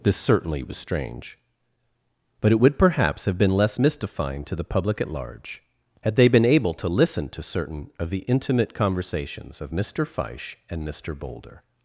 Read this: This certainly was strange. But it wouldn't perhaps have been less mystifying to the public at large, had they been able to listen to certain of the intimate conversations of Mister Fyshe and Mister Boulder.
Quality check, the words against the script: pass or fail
fail